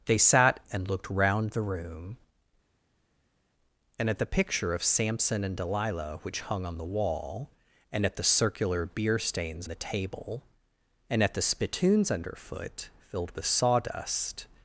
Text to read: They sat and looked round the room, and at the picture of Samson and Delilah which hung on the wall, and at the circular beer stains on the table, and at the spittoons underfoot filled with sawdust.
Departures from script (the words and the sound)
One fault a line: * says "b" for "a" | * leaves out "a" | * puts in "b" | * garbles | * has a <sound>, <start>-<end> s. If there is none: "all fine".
* leaves out "on"